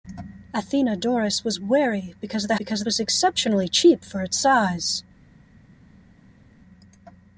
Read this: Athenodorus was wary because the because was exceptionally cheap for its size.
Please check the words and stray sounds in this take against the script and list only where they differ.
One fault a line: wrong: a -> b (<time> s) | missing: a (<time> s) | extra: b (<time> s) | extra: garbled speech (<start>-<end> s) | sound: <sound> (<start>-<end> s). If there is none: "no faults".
no faults